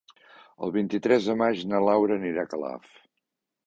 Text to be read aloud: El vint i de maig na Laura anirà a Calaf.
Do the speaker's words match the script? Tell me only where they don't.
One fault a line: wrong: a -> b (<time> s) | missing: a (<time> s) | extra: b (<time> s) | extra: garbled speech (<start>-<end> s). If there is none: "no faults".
extra: tres (1.1 s)